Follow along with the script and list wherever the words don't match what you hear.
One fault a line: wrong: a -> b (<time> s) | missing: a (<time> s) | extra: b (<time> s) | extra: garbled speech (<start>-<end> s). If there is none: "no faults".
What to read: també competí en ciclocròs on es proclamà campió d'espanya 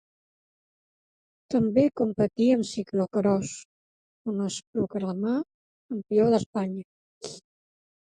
no faults